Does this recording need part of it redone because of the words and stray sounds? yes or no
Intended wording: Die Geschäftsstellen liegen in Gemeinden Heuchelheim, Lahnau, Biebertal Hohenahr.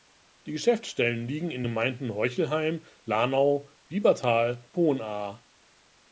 no